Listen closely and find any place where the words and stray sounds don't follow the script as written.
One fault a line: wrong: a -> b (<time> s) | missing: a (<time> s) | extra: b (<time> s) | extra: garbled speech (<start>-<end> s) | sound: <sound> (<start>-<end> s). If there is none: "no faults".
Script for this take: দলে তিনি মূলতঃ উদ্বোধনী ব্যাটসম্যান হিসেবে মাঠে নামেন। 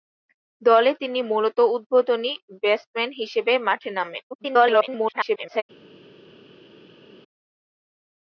extra: garbled speech (4.3-5.6 s)